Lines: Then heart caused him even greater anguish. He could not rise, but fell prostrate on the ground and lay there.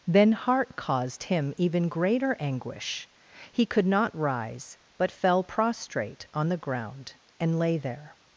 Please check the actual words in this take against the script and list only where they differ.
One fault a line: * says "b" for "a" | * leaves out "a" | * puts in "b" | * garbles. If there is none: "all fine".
all fine